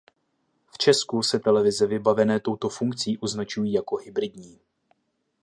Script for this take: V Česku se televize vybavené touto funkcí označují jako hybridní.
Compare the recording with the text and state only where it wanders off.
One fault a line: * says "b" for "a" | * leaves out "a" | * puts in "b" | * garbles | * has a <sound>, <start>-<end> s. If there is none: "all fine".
all fine